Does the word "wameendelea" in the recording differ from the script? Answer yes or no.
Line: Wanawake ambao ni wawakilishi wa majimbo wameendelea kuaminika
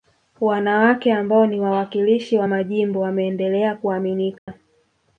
no